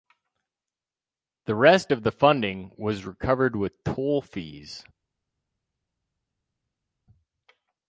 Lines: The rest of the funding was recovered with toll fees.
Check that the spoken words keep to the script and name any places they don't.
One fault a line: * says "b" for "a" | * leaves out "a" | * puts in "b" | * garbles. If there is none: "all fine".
all fine